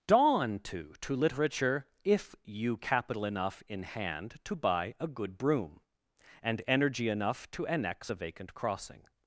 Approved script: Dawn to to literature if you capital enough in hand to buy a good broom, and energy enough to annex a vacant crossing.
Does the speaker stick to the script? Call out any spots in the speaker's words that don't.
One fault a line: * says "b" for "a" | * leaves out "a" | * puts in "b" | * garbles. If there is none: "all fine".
all fine